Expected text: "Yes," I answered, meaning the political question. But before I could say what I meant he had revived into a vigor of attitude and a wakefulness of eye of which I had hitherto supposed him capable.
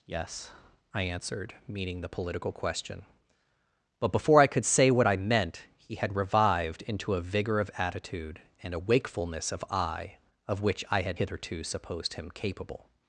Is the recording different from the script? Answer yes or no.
no